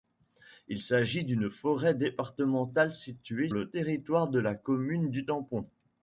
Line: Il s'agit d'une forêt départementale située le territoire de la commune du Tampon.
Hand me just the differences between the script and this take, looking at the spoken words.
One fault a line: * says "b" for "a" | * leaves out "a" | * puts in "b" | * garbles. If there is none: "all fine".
all fine